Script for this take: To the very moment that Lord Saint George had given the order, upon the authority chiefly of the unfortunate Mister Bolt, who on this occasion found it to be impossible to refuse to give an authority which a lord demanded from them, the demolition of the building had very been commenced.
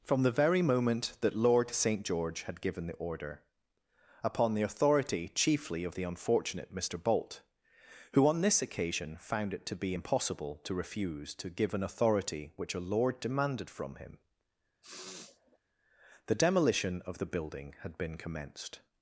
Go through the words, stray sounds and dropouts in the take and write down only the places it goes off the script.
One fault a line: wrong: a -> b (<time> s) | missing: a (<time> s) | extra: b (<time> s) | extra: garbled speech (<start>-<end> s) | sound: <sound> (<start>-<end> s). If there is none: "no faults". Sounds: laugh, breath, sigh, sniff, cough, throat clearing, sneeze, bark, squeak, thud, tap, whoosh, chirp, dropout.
wrong: To -> From (0.0 s)
wrong: them -> him (13.9 s)
sound: sniff (14.8-15.6 s)
missing: very (18.0 s)